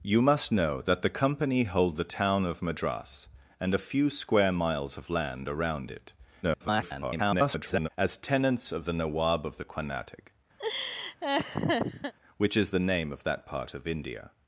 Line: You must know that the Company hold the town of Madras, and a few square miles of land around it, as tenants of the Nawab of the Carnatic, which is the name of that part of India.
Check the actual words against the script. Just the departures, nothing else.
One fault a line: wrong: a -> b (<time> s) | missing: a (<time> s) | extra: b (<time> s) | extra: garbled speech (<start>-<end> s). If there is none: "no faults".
extra: garbled speech (6.4-7.9 s)